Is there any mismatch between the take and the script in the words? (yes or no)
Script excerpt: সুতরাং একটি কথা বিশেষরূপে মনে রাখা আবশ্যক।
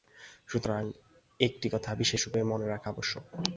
no